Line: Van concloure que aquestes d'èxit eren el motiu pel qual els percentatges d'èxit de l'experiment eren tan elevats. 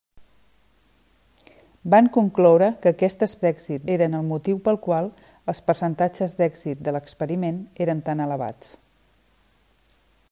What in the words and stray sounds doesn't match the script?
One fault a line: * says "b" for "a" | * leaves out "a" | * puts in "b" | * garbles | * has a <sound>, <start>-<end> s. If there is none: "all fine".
all fine